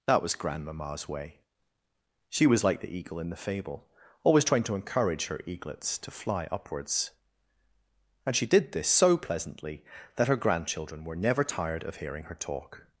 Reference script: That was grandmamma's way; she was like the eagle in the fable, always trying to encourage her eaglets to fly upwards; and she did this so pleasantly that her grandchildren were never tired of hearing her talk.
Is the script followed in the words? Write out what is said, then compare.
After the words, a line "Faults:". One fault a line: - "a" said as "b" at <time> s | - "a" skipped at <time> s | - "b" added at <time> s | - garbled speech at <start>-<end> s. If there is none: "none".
That was grandmamma's way; she was like the eagle in the fable, always trying to encourage her eaglets to fly upwards; and she did this so pleasantly that her grandchildren were never tired of hearing her talk.
Faults:
none